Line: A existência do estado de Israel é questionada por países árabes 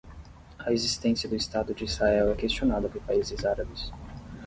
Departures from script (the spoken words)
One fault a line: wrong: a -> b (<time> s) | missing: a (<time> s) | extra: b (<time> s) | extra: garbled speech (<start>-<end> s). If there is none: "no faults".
no faults